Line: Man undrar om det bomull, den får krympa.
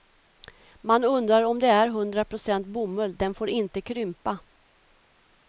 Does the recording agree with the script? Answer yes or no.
no